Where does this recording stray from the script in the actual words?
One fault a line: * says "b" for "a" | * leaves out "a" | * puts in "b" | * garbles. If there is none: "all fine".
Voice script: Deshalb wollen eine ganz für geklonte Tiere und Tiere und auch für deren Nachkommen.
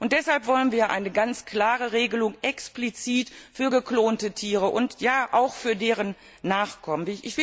* puts in "wir"
* puts in "klare Regelung explizit"
* leaves out "Tiere und"